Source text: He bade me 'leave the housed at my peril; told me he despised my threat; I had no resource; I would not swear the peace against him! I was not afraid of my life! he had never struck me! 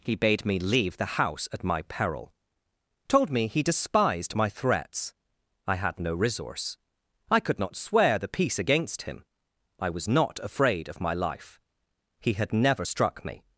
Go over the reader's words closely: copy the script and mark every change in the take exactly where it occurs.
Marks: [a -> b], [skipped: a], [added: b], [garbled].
He bade me 'leave the [housed -> house] at my peril; told me he despised my [threat; -> threats] I had no resource; I [would -> could] not swear the peace against him! I was not afraid of my life! he had never struck me!